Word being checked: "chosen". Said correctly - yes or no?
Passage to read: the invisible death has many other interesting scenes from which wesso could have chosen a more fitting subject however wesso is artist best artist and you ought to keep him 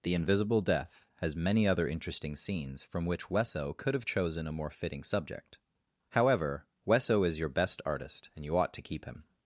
yes